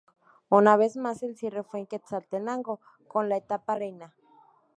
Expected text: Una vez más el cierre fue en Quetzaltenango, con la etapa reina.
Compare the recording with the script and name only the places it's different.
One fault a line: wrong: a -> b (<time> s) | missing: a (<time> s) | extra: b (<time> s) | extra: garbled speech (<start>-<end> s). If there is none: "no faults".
no faults